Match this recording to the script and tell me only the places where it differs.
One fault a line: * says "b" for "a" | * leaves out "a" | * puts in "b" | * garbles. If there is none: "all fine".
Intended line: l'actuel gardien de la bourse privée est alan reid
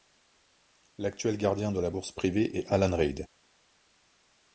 all fine